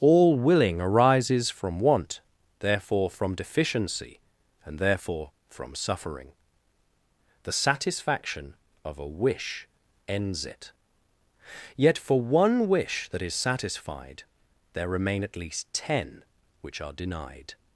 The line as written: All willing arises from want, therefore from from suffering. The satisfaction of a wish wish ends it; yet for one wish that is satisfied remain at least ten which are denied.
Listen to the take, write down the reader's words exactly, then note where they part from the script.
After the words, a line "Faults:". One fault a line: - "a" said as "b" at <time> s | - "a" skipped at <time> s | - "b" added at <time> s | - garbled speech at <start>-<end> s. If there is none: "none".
All willing arises from want, therefore from deficiency, and therefore from suffering. The satisfaction of a wish ends it; yet for one wish that is satisfied there remain at least ten which are denied.
Faults:
- "deficiency and therefore" added at 3.4 s
- "wish" skipped at 9.7 s
- "there" added at 14.7 s